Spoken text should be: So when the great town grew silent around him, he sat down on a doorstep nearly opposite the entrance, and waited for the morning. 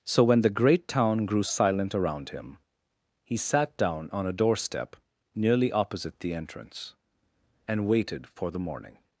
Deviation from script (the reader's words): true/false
false